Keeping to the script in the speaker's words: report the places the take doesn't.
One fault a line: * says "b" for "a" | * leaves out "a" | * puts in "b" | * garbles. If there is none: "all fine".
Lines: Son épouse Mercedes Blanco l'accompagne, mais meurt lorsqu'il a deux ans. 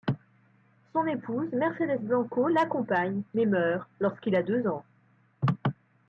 all fine